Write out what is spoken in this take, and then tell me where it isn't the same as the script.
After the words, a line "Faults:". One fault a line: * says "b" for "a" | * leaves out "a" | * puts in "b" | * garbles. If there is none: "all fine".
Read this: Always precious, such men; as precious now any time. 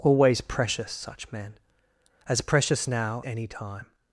Always precious, such men; as precious now any time.
Faults:
all fine